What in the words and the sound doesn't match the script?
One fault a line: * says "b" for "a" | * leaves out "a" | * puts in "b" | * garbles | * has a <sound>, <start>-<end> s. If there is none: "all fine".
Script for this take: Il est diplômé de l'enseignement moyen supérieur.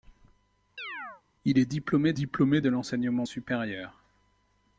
* has a chirp, 0.8-1.2 s
* puts in "diplômé"
* leaves out "moyen"